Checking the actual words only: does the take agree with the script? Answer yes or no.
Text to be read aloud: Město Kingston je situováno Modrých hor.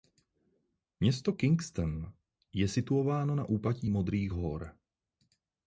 no